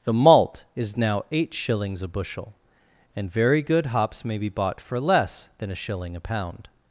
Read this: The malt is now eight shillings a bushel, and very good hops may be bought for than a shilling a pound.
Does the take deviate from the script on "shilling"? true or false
false